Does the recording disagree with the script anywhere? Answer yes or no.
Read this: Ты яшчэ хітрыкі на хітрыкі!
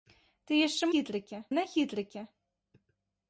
no